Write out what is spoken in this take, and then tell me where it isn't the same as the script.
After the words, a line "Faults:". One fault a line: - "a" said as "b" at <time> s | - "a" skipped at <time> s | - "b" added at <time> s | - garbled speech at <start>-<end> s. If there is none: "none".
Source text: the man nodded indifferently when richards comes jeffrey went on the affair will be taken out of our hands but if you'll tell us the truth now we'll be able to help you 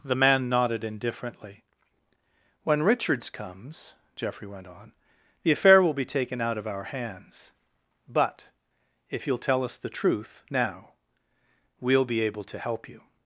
the man nodded indifferently when richards comes jeffrey went on the affair will be taken out of our hands but if you'll tell us the truth now we'll be able to help you
Faults:
none